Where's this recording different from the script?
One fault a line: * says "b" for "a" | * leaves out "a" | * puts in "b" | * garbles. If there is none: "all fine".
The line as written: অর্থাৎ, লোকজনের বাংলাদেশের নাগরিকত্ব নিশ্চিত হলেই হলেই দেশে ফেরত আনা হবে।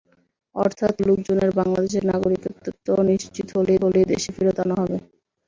all fine